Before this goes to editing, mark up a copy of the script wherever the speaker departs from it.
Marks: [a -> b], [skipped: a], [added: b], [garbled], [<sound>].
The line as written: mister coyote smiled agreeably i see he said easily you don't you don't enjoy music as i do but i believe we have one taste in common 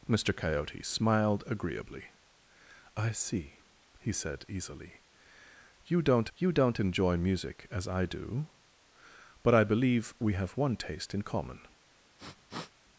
mister coyote smiled agreeably i see he said easily you don't you don't enjoy music as i do but i believe we have one taste in common [sniff]